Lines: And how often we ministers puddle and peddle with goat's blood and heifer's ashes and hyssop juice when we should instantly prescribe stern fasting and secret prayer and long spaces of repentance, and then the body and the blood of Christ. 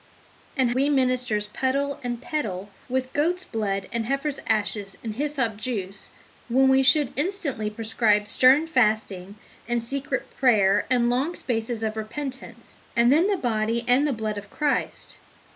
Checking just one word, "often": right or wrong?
wrong